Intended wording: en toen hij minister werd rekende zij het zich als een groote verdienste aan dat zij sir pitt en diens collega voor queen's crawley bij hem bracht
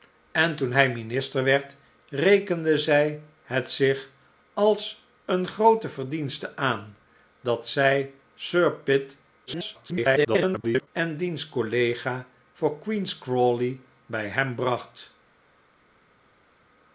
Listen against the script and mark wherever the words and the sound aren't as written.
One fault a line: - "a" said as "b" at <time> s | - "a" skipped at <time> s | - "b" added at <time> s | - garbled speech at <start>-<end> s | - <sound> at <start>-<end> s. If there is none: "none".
- garbled speech at 9.5-10.9 s